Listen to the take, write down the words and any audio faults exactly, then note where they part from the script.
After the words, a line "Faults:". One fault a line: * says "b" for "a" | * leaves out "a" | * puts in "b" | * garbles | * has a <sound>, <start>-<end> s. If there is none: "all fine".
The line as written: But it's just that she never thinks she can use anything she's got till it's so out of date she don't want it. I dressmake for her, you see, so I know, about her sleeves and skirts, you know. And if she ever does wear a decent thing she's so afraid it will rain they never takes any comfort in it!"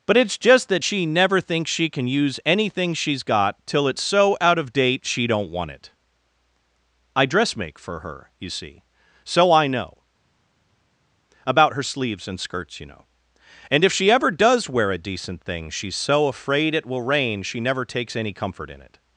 But it's just that she never thinks she can use anything she's got till it's so out of date she don't want it. I dressmake for her, you see, so I know, about her sleeves and skirts, you know. And if she ever does wear a decent thing she's so afraid it will rain she never takes any comfort in it!"
Faults:
* says "she" for "they"